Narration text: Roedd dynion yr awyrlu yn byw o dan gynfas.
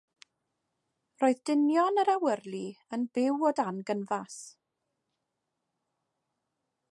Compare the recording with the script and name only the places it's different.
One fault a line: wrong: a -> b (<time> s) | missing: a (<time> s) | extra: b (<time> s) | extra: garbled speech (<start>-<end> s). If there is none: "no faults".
no faults